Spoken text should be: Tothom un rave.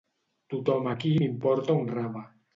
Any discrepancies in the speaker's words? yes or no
yes